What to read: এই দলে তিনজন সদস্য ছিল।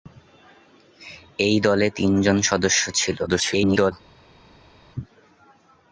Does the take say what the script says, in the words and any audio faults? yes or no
no